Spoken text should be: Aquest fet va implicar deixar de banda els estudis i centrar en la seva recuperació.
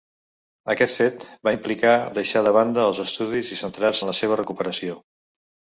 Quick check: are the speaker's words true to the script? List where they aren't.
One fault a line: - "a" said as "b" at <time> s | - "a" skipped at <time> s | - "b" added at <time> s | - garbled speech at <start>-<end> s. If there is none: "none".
none